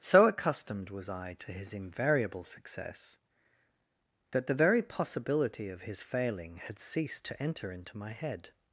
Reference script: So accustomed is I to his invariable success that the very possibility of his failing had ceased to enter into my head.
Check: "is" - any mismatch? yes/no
yes